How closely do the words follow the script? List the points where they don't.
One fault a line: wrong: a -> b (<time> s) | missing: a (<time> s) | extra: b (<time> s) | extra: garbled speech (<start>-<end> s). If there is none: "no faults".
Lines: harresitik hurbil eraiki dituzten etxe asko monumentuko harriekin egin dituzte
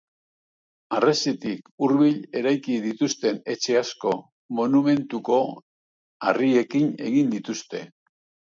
no faults